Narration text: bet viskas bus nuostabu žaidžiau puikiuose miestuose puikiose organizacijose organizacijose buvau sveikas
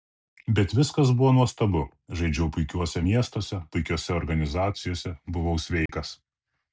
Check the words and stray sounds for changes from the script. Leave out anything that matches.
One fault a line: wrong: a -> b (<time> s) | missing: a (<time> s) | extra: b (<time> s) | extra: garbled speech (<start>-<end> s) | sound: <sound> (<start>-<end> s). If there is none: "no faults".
wrong: bus -> buvo (1.2 s)
missing: organizacijose (5.1 s)
sound: dropout (5.9-5.9 s)